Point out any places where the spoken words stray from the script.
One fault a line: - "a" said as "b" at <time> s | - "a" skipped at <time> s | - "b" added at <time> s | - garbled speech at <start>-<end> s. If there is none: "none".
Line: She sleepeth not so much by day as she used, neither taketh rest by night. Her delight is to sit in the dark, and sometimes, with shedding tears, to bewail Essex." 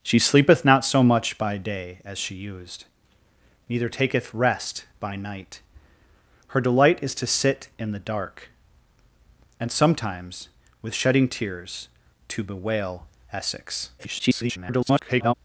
- garbled speech at 14.0-15.3 s